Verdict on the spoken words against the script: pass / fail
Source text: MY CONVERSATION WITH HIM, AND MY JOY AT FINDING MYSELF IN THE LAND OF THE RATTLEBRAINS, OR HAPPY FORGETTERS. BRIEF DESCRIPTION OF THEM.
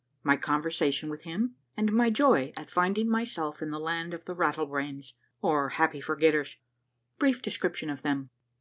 pass